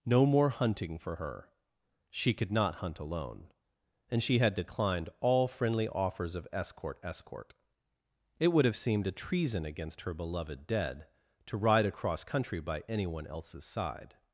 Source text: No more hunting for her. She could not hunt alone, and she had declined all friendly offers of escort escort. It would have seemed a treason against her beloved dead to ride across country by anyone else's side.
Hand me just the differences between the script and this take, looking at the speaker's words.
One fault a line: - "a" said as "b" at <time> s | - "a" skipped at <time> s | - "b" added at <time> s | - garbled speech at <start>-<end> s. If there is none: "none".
none